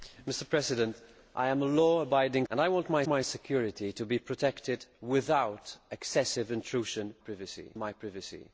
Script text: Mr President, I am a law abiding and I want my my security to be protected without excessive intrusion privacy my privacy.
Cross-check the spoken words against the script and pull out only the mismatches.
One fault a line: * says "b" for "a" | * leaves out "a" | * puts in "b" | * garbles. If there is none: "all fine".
all fine